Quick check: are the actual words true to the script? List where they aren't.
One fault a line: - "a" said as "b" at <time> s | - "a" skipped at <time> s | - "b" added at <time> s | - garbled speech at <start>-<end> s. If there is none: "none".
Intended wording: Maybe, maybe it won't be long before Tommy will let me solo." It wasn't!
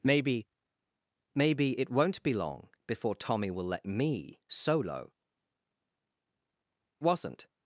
- "It" skipped at 5.1 s